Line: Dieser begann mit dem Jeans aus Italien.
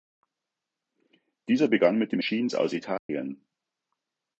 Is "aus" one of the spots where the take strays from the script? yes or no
no